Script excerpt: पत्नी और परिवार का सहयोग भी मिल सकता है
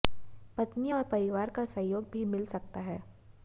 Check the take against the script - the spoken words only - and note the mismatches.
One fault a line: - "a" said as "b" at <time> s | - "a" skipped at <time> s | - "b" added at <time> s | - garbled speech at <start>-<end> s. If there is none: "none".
none